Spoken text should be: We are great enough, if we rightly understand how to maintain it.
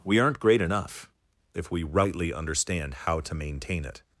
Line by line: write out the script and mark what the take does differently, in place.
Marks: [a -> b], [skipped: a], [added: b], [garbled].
We [are -> aren't] great enough, if we rightly understand how to maintain it.